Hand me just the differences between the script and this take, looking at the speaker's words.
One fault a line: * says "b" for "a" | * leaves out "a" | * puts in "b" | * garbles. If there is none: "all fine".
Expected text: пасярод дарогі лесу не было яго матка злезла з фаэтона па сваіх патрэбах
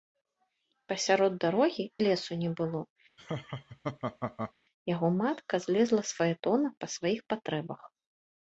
all fine